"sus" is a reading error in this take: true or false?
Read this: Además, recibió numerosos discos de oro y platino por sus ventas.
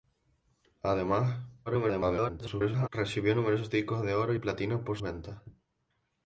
true